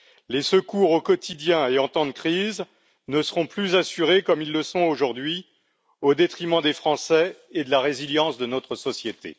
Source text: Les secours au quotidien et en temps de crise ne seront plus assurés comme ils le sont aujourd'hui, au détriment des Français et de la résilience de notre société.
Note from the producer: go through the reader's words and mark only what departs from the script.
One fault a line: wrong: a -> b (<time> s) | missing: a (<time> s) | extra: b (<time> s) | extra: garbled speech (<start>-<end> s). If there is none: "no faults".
no faults